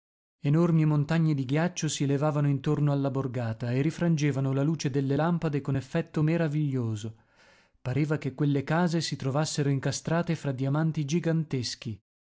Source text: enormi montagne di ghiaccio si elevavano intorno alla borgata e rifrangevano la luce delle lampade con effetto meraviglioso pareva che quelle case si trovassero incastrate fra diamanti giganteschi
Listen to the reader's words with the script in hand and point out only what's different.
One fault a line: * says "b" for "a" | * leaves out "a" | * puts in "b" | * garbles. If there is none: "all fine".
all fine